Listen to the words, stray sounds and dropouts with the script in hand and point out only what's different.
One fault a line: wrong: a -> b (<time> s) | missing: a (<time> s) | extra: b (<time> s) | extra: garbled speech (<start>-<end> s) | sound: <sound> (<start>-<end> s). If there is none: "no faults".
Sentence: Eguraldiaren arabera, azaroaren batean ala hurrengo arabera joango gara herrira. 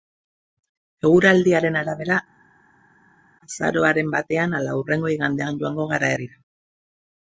wrong: arabera -> igandean (5.2 s)